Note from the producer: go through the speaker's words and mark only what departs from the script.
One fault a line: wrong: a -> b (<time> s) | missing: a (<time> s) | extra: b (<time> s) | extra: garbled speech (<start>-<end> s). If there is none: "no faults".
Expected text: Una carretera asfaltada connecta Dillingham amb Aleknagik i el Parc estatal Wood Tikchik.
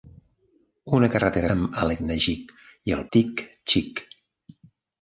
missing: asfaltada connecta Dillingham (1.5 s)
missing: Parc estatal Wood (3.0 s)